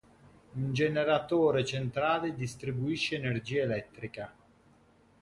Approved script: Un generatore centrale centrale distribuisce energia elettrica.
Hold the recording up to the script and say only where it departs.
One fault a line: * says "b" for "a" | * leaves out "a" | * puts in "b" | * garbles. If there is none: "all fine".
* leaves out "centrale"